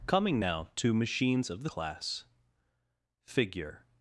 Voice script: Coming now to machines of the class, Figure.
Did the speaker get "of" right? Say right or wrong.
right